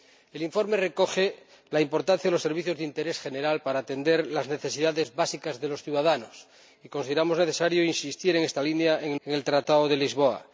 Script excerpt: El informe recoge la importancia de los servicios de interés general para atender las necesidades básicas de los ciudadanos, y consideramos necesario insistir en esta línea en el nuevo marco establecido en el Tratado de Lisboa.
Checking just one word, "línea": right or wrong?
right